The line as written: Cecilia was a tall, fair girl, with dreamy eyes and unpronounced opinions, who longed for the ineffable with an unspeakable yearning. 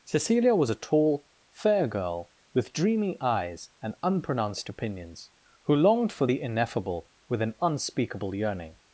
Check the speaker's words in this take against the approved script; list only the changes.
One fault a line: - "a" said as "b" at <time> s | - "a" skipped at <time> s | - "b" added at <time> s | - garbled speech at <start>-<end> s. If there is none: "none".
none